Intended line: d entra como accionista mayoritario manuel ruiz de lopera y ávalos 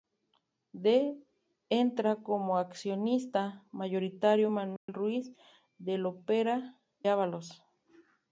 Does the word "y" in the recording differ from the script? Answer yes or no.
yes